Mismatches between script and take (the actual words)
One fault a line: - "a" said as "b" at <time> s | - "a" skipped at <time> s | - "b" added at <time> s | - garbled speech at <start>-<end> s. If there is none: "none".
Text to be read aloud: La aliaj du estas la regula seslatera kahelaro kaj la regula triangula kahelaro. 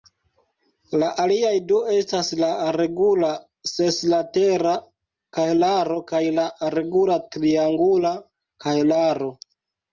none